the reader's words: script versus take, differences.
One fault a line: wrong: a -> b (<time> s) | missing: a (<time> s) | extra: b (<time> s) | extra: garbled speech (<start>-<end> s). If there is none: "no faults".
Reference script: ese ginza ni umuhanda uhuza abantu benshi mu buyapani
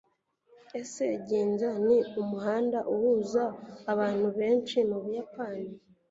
no faults